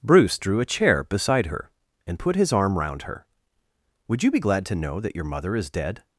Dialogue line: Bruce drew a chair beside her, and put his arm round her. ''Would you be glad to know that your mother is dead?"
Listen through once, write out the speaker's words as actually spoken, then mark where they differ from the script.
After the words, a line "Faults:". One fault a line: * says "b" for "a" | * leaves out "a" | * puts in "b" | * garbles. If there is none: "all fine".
Bruce drew a chair beside her, and put his arm round her. ''Would you be glad to know that your mother is dead?"
Faults:
all fine